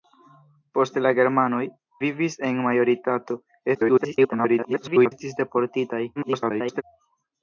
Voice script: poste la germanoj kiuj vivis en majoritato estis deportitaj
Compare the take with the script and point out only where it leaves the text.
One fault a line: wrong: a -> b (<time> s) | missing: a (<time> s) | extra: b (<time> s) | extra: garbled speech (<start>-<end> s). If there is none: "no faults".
missing: kiuj (1.6 s)
extra: garbled speech (3.7-5.1 s)
extra: garbled speech (6.2-6.8 s)